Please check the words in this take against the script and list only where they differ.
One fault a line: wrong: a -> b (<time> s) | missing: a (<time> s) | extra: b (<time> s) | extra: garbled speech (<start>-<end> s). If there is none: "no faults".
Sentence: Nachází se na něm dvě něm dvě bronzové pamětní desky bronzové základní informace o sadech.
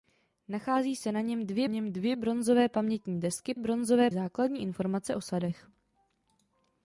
no faults